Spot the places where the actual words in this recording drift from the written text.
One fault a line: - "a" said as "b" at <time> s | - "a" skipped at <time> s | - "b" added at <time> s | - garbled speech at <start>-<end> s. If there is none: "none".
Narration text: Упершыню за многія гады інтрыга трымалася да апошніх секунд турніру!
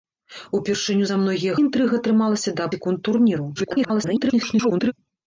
- "гады" skipped at 1.5 s
- "апошніх" skipped at 2.7 s
- garbled speech at 3.6-4.9 s